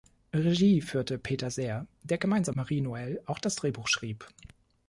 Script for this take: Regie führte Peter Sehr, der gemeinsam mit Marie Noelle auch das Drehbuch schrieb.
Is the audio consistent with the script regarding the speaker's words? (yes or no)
no